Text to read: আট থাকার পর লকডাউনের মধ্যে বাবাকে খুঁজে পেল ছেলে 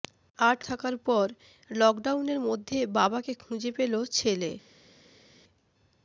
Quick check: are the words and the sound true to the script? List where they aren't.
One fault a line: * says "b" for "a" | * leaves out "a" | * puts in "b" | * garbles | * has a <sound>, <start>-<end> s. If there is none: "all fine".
all fine